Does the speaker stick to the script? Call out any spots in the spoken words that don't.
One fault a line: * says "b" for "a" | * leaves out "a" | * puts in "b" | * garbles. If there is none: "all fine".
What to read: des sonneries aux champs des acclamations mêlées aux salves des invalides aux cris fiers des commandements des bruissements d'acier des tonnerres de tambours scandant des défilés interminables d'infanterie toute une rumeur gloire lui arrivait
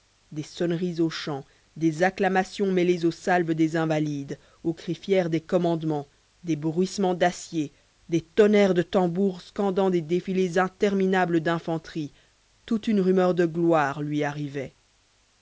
* puts in "de"